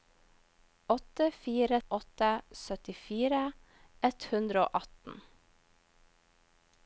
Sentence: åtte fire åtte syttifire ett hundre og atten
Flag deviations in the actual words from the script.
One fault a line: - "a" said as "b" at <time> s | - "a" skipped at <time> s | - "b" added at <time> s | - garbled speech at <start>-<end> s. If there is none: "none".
none